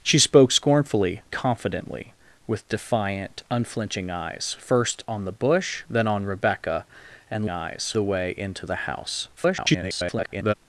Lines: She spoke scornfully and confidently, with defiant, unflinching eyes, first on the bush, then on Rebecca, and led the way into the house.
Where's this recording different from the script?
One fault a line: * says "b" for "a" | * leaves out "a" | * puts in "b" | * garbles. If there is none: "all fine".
* leaves out "and"
* says "eyes" for "led"
* garbles